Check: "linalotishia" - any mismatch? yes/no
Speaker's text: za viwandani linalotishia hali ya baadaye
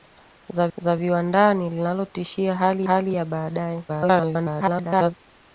no